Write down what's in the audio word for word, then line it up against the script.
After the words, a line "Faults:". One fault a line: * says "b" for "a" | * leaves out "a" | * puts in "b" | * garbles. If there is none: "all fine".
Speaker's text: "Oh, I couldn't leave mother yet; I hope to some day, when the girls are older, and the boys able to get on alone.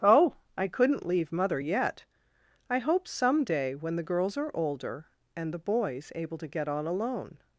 "Oh, I couldn't leave mother yet; I hope some day, when the girls are older, and the boys able to get on alone.
Faults:
* leaves out "to"